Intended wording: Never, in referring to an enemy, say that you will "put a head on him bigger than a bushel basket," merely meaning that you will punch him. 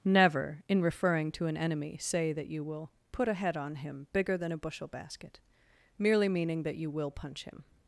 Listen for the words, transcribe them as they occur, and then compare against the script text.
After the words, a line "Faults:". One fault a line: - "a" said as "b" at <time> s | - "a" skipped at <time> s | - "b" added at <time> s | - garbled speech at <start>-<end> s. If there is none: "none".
Never, in referring to an enemy, say that you will "put a head on him bigger than a bushel basket," merely meaning that you will punch him.
Faults:
none